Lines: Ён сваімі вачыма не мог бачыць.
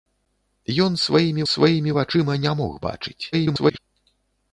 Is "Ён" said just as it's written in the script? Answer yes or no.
yes